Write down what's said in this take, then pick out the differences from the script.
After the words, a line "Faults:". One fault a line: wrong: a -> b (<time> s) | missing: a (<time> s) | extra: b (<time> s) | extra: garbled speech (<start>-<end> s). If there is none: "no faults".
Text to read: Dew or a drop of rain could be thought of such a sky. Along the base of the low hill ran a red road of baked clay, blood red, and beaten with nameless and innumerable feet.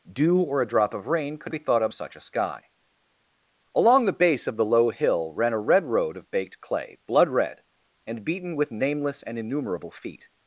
Dew or a drop of rain could be thought of such a sky. Along the base of the low hill ran a red road of baked clay, blood red, and beaten with nameless and innumerable feet.
Faults:
no faults